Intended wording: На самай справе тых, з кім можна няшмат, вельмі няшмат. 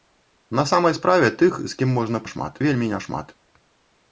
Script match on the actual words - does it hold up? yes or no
yes